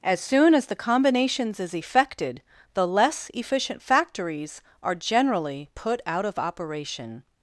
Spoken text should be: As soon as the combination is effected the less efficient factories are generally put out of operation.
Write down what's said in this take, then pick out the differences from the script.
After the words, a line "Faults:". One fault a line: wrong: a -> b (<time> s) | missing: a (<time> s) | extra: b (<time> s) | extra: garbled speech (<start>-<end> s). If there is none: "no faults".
As soon as the combinations is effected the less efficient factories are generally put out of operation.
Faults:
wrong: combination -> combinations (0.8 s)